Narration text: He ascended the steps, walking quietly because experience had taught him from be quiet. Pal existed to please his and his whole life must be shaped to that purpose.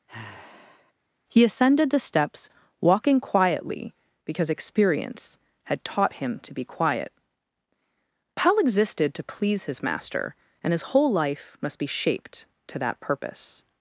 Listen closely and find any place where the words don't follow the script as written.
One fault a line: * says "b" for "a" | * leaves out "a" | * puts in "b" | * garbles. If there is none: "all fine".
* says "to" for "from"
* puts in "master"